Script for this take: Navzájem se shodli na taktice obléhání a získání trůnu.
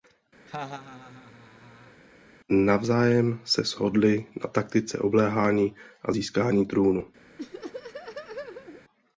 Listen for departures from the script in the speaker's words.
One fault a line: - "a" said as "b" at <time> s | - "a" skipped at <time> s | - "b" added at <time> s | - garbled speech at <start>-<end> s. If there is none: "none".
none